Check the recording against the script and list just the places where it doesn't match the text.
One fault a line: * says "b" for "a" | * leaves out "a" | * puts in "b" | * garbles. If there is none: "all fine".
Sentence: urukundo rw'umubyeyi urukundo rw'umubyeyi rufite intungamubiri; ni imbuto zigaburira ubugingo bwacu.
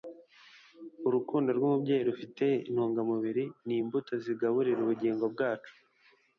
* leaves out "urukundo rw'umubyeyi"